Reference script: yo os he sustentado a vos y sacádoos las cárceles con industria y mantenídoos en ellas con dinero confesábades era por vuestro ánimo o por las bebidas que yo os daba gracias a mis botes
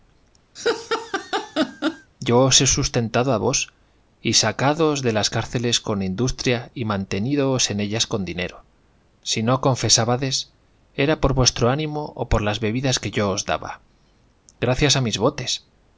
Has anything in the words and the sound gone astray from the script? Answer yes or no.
yes